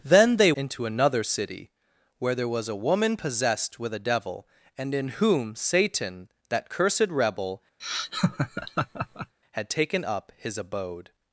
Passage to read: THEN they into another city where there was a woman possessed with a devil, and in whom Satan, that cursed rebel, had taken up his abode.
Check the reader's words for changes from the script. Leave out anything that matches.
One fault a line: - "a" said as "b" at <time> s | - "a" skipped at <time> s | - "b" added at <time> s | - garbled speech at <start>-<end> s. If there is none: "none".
none